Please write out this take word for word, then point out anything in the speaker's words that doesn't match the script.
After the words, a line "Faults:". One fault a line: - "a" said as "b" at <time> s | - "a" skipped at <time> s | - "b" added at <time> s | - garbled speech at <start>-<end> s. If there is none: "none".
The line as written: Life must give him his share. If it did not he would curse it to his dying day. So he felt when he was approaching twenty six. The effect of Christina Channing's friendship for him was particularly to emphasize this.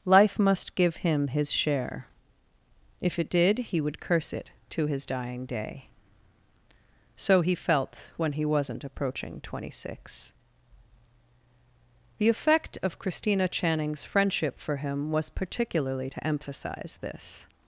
Life must give him his share. If it did he would curse it to his dying day. So he felt when he wasn't approaching twenty six. The effect of Christina Channing's friendship for him was particularly to emphasize this.
Faults:
- "not" skipped at 3.6 s
- "was" said as "wasn't" at 8.4 s